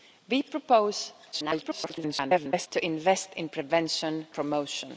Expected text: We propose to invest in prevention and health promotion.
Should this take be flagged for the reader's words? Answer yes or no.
yes